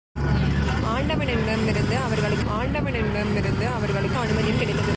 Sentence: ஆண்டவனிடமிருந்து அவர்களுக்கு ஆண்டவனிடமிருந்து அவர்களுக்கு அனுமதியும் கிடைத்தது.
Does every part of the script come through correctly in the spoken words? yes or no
yes